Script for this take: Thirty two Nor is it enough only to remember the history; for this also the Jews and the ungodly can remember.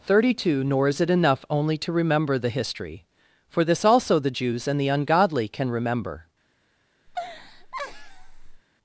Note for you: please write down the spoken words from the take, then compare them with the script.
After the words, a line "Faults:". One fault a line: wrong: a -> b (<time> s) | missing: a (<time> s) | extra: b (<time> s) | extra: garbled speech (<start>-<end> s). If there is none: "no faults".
Thirty two Nor is it enough only to remember the history; for this also the Jews and the ungodly can remember.
Faults:
no faults